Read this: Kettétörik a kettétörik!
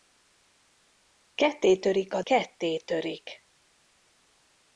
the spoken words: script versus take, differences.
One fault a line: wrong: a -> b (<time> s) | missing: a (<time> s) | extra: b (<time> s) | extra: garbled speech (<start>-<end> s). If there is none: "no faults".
no faults